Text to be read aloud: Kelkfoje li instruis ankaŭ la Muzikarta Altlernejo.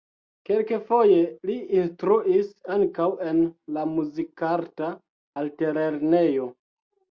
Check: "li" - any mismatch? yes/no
no